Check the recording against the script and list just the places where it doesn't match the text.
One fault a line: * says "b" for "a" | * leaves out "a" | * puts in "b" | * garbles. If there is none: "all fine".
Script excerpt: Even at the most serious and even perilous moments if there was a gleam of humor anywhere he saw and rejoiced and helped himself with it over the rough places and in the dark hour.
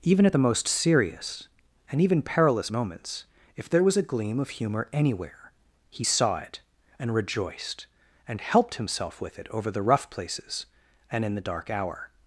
* puts in "it"